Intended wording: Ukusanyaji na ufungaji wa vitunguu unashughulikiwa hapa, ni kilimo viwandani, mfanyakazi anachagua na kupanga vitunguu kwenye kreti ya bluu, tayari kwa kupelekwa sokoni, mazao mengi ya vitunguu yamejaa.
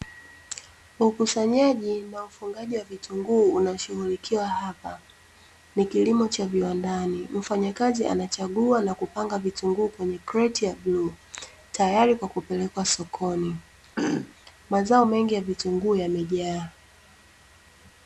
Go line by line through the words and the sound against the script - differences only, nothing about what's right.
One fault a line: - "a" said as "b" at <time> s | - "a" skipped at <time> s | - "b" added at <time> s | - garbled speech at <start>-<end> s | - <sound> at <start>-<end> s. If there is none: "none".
- "cha" added at 6.3 s
- throat clearing at 14.0-14.3 s